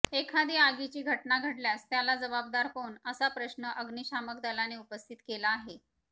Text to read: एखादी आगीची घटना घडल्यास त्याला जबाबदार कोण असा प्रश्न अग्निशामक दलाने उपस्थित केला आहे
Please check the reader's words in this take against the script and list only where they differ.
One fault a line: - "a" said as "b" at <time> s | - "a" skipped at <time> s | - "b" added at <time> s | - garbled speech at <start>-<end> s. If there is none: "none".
none